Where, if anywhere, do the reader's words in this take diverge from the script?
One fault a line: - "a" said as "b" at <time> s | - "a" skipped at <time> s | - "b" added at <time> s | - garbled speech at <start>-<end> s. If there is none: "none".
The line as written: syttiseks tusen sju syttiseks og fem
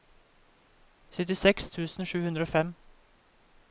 - "syttiseks" said as "hundre" at 2.3 s